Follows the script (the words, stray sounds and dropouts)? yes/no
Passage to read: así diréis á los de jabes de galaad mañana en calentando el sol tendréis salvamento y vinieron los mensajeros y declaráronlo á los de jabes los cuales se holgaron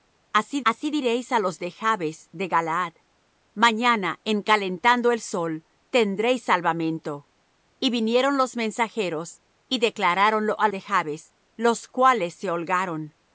no